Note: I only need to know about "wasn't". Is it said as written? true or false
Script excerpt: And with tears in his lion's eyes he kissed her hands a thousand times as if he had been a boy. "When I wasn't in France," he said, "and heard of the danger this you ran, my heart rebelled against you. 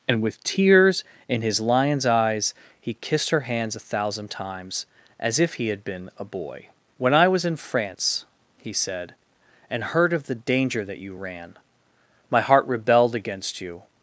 false